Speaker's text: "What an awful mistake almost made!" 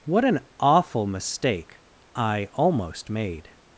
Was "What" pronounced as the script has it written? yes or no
yes